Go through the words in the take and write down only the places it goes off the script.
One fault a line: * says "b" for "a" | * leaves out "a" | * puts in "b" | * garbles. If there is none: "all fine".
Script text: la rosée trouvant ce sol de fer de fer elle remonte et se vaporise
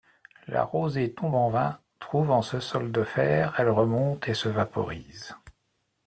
* puts in "tombe en vain"
* leaves out "de fer"